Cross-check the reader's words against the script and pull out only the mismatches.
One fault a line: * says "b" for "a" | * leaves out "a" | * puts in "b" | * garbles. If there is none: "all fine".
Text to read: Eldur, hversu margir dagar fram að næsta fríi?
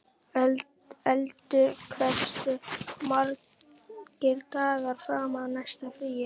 all fine